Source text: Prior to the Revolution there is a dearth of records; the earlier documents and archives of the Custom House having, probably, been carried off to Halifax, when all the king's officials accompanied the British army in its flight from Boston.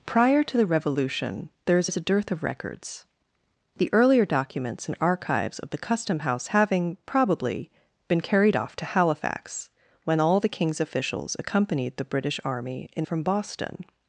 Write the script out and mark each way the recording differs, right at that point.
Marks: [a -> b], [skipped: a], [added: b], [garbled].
Prior to the Revolution there is [added: is] a dearth of records; the earlier documents and archives of the Custom House having, probably, been carried off to Halifax, when all the king's officials accompanied the British army in [skipped: its flight] from Boston.